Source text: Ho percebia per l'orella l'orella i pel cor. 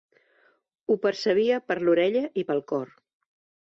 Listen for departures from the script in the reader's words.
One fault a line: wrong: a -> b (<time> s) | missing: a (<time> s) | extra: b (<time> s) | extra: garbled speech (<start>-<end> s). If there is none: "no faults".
missing: l'orella (2.2 s)